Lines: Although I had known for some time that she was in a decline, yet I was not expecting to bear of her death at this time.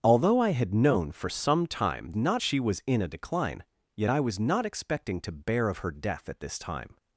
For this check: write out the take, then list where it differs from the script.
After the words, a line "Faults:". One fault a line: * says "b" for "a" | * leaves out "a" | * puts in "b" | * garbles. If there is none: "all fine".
Although I had known for some time not she was in a decline, yet I was not expecting to bear of her death at this time.
Faults:
* says "not" for "that"